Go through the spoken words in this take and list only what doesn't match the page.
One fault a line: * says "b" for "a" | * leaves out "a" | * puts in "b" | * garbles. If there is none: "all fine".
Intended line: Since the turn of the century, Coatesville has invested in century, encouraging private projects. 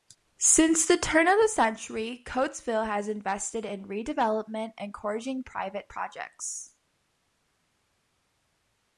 * says "redevelopment" for "century"